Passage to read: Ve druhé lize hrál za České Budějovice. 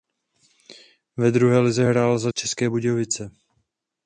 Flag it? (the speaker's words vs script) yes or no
no